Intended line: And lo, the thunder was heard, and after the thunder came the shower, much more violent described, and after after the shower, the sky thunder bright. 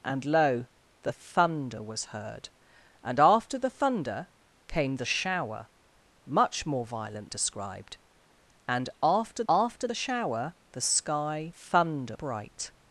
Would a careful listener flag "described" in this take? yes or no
no